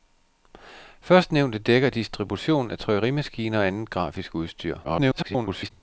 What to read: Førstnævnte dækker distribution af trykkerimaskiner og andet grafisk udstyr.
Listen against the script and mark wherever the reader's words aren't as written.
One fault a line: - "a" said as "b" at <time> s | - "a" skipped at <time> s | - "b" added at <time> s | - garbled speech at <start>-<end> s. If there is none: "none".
- garbled speech at 4.8-5.7 s